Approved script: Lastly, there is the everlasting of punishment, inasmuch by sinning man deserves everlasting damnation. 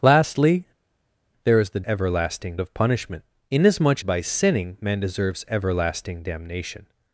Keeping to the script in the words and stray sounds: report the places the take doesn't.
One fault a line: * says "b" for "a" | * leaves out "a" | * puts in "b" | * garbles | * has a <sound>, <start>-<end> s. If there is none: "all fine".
all fine